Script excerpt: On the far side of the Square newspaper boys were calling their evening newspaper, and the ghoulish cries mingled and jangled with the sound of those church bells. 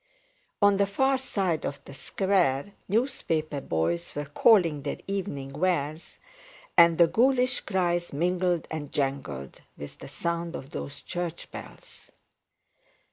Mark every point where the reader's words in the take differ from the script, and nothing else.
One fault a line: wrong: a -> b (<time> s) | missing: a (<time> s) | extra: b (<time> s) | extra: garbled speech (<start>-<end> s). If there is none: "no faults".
wrong: newspaper -> wares (5.5 s)